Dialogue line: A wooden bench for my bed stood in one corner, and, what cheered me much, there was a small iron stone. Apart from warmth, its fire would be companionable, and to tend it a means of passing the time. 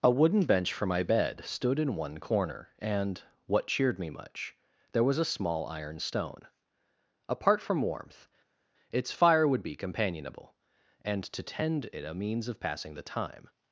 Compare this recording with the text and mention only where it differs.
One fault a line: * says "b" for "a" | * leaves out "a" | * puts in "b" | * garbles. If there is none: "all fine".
all fine